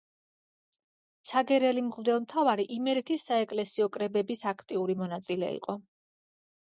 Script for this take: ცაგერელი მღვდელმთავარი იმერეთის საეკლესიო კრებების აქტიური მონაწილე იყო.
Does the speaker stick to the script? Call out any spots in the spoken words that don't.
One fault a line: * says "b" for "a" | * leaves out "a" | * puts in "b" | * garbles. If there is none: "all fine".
all fine